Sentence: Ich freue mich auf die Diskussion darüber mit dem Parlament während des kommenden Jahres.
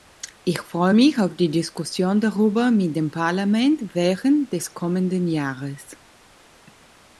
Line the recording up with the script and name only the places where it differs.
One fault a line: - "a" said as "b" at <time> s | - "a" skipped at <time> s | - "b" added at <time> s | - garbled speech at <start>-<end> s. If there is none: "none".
none